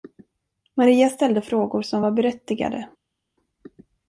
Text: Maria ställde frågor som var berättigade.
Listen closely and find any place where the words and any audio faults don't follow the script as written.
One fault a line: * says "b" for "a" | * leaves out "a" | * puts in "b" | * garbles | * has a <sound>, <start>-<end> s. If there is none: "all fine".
all fine